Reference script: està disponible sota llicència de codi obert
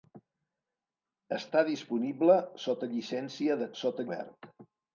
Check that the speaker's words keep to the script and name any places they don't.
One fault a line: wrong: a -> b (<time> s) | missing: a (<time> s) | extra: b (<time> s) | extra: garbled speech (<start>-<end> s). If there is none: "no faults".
wrong: codi -> sota (3.8 s)